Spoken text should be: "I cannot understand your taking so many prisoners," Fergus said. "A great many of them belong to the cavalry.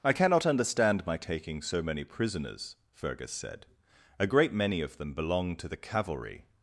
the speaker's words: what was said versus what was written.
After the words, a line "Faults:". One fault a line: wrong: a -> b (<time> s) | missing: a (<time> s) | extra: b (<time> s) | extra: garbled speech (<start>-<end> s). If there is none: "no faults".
"I cannot understand my taking so many prisoners," Fergus said. "A great many of them belong to the cavalry.
Faults:
wrong: your -> my (1.0 s)